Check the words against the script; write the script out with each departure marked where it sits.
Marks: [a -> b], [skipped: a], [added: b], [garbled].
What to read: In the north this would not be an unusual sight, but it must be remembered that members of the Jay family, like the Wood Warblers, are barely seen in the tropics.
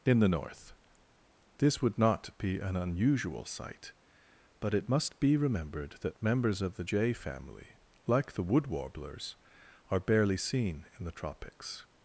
In the north this would not be an unusual sight, but it must be remembered that members of the Jay family, like the Wood Warblers, are barely seen in the tropics.